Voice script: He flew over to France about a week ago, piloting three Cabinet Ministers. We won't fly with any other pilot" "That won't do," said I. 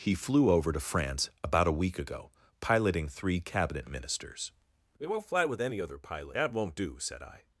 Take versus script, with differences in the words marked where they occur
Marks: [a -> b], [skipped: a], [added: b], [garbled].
He flew over to France about a week ago, piloting three Cabinet Ministers. We won't fly with any other pilot" "That won't do," said I.